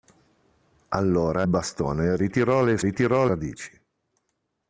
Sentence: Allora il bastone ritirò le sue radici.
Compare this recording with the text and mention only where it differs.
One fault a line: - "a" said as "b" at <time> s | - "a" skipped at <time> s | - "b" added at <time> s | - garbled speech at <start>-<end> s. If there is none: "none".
- "il" skipped at 1.5 s
- "sue" said as "ritirò" at 2.8 s